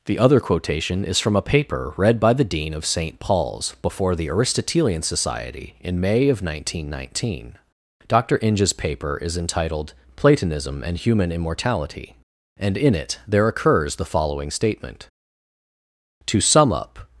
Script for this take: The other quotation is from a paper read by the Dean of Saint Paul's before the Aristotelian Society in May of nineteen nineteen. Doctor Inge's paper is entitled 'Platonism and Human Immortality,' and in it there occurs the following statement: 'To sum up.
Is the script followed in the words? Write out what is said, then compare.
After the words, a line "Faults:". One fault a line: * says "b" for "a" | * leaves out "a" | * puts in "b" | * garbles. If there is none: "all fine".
The other quotation is from a paper read by the Dean of Saint Paul's before the Aristotelian Society in May of nineteen nineteen. Doctor Inge's paper is entitled 'Platonism and Human Immortality,' and in it there occurs the following statement: 'To sum up.
Faults:
all fine